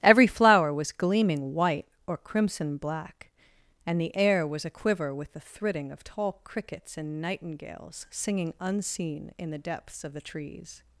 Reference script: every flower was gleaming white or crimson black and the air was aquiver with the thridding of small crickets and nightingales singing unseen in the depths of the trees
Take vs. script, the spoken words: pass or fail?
fail